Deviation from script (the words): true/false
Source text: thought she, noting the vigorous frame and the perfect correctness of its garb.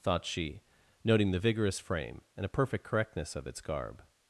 true